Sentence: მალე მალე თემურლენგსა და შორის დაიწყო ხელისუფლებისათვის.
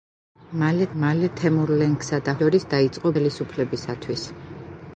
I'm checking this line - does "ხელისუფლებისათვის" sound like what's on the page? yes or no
yes